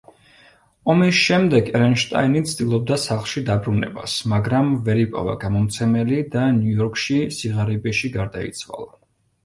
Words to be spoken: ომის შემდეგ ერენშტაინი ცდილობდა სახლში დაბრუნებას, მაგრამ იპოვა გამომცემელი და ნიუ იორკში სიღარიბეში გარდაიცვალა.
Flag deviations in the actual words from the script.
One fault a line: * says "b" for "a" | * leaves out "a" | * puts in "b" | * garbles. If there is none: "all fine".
* puts in "ვერ"